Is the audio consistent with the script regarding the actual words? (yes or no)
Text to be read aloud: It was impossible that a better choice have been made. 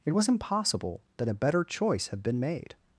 yes